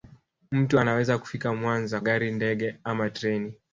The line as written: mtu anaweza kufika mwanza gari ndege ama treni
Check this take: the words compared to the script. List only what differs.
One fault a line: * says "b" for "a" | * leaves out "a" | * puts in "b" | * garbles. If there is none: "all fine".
all fine